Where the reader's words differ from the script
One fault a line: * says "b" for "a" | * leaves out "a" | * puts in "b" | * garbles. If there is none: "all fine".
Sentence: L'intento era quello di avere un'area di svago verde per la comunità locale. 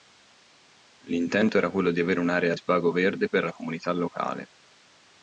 * leaves out "di"